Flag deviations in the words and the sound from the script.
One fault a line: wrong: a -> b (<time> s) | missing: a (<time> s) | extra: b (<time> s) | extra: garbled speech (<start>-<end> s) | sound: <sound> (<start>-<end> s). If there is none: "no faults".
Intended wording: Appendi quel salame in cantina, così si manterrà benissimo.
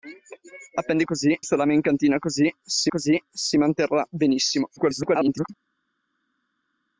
wrong: quel -> così (1.0 s)
extra: così si (2.9 s)
extra: garbled speech (4.8-5.5 s)